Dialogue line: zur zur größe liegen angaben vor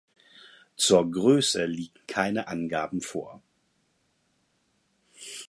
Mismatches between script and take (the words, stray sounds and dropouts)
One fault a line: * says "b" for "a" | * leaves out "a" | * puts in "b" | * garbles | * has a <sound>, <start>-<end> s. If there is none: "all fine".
* leaves out "zur"
* puts in "keine"